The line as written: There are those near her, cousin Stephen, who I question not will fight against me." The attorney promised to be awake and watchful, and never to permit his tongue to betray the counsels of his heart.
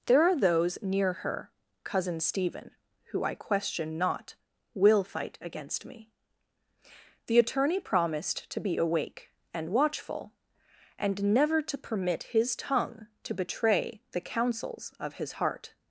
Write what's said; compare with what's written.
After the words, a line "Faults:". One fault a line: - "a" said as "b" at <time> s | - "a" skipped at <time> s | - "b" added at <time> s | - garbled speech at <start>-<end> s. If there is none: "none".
There are those near her, cousin Stephen, who I question not will fight against me." The attorney promised to be awake and watchful, and never to permit his tongue to betray the counsels of his heart.
Faults:
none